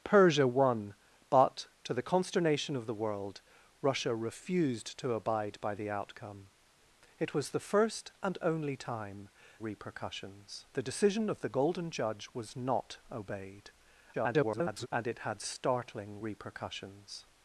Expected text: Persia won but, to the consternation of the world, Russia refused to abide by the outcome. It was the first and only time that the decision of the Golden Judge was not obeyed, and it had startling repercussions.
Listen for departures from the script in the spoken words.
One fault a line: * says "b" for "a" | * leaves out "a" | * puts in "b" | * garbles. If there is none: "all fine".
* says "repercussions" for "that"
* garbles